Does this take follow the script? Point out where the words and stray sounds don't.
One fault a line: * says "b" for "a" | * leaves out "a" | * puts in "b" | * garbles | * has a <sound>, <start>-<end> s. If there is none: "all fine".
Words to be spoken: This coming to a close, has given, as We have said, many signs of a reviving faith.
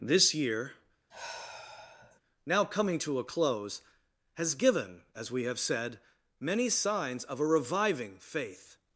* puts in "year now"
* has a sigh, 1.1-2.2 s